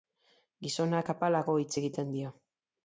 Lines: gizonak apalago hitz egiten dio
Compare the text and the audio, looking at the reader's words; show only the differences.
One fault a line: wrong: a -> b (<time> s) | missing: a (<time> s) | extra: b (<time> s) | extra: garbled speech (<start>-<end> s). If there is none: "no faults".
no faults